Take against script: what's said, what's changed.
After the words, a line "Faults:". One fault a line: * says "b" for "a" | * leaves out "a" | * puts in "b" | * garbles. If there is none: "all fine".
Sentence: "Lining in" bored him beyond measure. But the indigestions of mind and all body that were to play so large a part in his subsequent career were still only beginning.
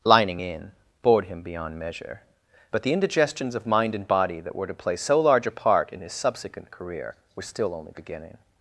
"Lining in" bored him beyond measure. But the indigestions of mind and body that were to play so large a part in his subsequent career were still only beginning.
Faults:
* leaves out "all"